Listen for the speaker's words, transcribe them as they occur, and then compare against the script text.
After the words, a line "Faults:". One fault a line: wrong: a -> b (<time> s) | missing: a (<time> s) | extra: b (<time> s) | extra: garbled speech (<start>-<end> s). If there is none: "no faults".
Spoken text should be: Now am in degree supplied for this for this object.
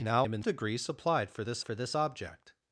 Now am in degree supplied for this for this object.
Faults:
no faults